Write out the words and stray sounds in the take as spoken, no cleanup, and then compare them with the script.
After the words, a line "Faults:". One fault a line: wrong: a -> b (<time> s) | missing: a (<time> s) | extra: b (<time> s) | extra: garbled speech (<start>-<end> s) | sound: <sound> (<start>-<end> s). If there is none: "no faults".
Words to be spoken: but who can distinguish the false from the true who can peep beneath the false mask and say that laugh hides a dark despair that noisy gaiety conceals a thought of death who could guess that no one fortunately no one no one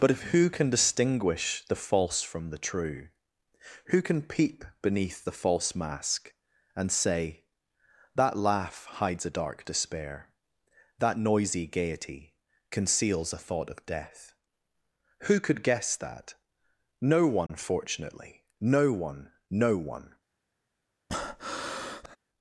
but if who can distinguish the false from the true who can peep beneath the false mask and say that laugh hides a dark despair that noisy gaiety conceals a thought of death who could guess that no one fortunately no one no one
Faults:
extra: if (0.1 s)
sound: dropout (17.5-17.5 s)
sound: breath (21.1-22.2 s)